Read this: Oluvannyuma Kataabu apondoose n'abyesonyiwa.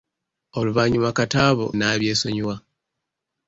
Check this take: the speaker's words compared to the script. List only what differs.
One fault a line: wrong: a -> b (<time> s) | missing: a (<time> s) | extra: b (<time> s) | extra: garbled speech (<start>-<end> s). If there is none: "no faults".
missing: apondoose (1.6 s)